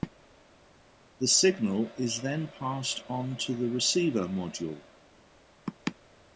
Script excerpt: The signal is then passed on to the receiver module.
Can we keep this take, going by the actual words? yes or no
yes